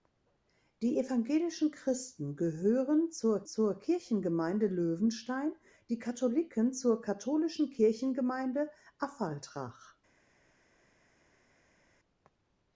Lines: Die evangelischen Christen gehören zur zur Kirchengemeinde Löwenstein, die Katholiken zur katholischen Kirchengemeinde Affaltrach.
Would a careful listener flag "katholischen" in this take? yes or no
no